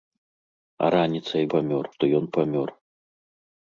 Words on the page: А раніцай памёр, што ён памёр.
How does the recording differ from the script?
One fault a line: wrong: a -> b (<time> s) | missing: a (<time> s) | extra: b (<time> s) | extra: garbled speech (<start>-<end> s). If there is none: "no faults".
no faults